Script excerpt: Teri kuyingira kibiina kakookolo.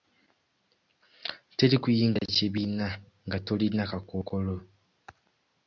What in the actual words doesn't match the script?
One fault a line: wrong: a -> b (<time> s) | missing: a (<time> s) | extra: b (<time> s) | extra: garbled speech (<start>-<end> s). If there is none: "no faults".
extra: nga tolina (3.3 s)